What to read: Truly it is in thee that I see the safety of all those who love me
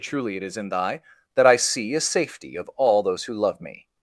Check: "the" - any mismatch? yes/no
yes